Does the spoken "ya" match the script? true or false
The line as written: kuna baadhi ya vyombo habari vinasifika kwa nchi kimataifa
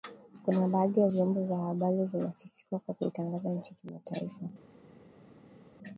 true